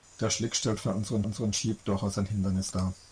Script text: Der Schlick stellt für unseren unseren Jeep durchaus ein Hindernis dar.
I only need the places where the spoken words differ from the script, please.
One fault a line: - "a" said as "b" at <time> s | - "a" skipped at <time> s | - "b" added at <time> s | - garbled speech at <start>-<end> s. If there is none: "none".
none